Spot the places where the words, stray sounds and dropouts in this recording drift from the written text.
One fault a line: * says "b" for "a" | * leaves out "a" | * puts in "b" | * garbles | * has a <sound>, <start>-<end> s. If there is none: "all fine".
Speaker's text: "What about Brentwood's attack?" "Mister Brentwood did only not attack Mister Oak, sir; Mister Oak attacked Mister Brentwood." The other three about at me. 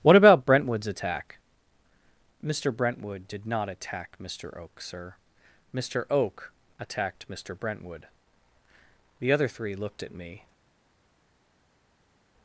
* leaves out "only"
* says "looked" for "about"